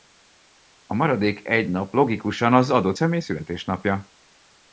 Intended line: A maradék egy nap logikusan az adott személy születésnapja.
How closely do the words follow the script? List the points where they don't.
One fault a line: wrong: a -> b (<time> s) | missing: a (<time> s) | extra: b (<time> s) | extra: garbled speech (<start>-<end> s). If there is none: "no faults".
no faults